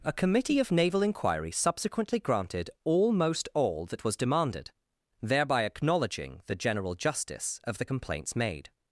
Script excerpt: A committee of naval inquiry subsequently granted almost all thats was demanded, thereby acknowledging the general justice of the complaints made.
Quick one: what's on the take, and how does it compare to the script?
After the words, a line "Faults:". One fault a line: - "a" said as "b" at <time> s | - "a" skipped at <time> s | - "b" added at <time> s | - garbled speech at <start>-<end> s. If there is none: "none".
A committee of naval inquiry subsequently granted almost all that was demanded, thereby acknowledging the general justice of the complaints made.
Faults:
- "thats" said as "that" at 3.9 s